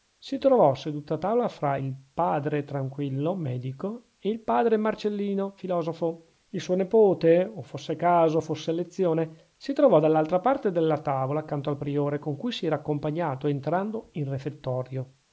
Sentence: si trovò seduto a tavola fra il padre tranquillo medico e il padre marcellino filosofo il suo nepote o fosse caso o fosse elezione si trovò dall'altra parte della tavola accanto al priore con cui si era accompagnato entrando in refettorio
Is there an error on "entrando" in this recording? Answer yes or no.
no